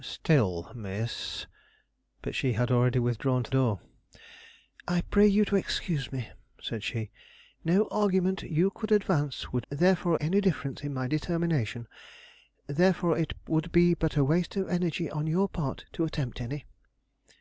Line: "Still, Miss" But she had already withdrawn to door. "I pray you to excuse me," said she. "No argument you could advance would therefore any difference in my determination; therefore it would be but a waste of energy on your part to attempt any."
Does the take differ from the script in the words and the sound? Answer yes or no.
no